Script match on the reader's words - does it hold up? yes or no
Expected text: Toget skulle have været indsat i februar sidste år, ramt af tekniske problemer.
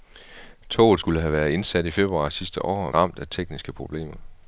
yes